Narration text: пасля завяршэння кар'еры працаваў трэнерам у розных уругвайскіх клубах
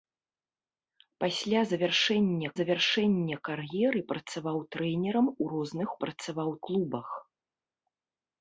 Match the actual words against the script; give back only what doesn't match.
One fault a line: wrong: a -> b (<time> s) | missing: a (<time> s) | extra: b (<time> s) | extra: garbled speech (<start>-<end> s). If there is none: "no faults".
extra: завяршэння (2.6 s)
wrong: уругвайскіх -> працаваў (6.1 s)